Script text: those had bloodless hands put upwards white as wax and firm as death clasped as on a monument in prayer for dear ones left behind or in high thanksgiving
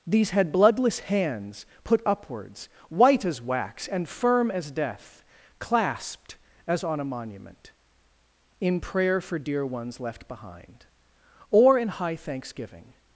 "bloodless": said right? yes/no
yes